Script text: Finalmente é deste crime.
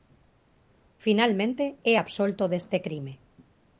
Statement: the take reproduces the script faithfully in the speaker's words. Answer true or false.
false